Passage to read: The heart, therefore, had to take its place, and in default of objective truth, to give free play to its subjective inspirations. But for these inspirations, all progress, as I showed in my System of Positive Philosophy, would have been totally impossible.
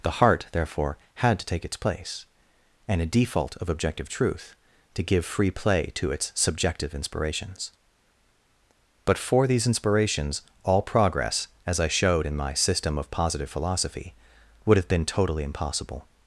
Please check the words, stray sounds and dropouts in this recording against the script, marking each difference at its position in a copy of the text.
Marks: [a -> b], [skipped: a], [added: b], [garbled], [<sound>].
The heart, therefore, had to take its place, and [in -> a] default of objective truth, to give free play to its subjective inspirations. But for these inspirations, all progress, as I showed in my System of Positive Philosophy, would have been totally impossible.